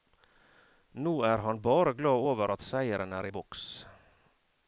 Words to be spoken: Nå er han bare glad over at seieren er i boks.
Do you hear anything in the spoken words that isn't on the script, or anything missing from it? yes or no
no